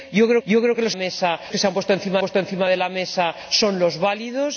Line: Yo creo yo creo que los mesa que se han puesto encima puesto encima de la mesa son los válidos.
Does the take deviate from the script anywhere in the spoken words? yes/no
no